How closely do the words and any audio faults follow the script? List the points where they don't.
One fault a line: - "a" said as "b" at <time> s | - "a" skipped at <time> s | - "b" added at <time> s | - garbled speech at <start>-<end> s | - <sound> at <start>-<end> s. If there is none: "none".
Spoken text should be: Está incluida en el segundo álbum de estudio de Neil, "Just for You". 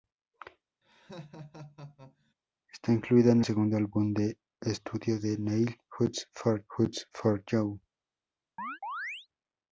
- laugh at 0.8-2.3 s
- "el" skipped at 3.4 s
- "just for" added at 6.7 s
- chirp at 8.6-9.3 s